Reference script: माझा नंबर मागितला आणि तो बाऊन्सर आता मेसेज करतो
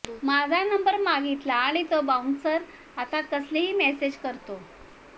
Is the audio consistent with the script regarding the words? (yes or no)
no